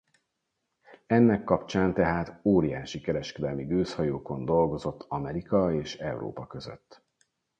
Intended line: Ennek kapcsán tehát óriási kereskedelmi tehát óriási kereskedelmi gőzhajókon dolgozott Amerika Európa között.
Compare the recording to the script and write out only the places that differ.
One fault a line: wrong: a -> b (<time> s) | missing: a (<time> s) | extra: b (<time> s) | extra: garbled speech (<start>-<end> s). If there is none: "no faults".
missing: tehát óriási kereskedelmi (3.6 s)
extra: és (5.7 s)